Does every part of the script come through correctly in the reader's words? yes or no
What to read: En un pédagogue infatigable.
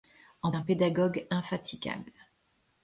yes